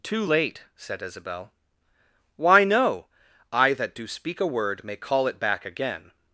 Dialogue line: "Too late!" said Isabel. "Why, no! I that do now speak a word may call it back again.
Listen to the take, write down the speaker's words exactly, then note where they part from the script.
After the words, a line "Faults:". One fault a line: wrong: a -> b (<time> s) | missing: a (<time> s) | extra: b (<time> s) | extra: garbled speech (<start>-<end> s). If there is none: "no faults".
"Too late!" said Isabel. "Why, no! I that do speak a word may call it back again.
Faults:
missing: now (4.1 s)